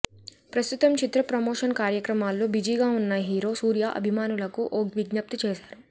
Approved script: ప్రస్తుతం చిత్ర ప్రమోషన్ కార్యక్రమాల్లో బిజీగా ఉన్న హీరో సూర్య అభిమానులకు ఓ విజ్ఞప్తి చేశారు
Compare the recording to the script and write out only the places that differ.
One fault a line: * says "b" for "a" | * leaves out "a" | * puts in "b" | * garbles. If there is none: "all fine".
all fine